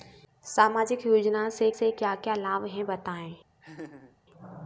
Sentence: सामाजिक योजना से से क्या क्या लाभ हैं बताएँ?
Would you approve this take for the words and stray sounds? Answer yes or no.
no